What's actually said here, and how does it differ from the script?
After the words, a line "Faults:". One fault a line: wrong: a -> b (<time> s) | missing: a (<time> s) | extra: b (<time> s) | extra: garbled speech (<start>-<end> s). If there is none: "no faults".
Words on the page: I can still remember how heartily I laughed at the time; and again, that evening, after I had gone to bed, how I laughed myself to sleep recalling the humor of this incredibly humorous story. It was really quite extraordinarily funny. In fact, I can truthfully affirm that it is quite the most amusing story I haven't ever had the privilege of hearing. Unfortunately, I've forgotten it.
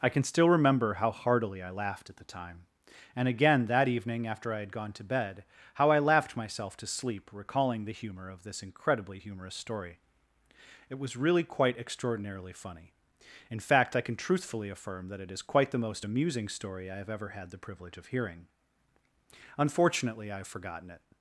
I can still remember how heartily I laughed at the time; and again, that evening, after I had gone to bed, how I laughed myself to sleep recalling the humor of this incredibly humorous story. It was really quite extraordinarily funny. In fact, I can truthfully affirm that it is quite the most amusing story I have ever had the privilege of hearing. Unfortunately, I've forgotten it.
Faults:
wrong: haven't -> have (17.0 s)